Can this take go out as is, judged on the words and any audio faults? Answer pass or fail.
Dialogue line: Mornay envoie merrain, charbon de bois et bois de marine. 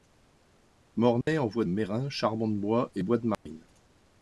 fail